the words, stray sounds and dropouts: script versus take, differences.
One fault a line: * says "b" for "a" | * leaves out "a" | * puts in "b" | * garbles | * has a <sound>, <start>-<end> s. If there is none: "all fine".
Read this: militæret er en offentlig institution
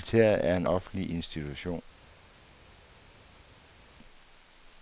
all fine